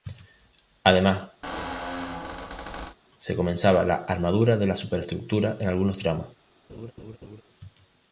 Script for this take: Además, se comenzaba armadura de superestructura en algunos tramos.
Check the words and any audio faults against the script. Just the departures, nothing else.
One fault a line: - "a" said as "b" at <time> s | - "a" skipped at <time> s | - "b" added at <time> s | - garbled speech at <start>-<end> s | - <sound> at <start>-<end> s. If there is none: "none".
- squeak at 1.4-3.0 s
- "la" added at 3.8 s
- "la" added at 4.7 s
- laugh at 6.7-7.4 s